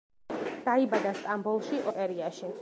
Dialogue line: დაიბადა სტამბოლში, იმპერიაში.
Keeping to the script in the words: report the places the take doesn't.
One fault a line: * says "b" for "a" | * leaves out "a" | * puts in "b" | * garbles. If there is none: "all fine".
all fine